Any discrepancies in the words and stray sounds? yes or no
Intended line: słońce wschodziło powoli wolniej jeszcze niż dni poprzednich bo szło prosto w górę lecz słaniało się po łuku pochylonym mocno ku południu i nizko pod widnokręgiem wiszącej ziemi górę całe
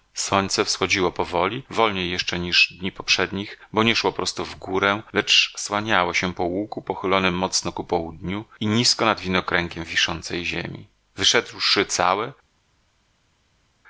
yes